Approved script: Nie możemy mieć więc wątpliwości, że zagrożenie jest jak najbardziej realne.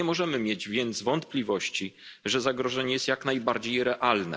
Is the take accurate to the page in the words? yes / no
yes